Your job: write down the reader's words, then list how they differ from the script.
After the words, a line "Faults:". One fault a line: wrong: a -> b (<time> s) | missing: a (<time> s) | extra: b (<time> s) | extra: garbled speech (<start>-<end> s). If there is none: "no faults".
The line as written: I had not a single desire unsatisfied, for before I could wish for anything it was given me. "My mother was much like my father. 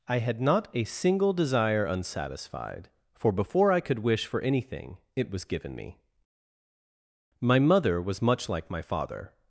I had not a single desire unsatisfied, for before I could wish for anything it was given me. "My mother was much like my father.
Faults:
no faults